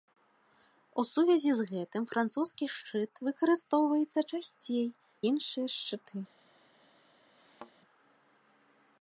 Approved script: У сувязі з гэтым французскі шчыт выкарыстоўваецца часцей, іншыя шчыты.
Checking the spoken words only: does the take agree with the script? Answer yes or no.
yes